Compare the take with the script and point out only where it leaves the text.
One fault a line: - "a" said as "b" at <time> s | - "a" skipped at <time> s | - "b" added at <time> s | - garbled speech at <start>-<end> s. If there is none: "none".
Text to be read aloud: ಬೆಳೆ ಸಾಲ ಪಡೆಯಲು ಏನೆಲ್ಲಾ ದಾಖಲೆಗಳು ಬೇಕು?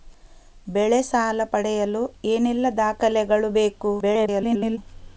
- garbled speech at 4.0-4.8 s